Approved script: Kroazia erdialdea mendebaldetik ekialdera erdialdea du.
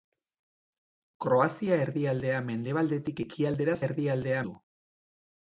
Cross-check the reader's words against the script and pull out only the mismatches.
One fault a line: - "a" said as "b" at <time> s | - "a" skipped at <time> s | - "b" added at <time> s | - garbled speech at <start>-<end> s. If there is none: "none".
none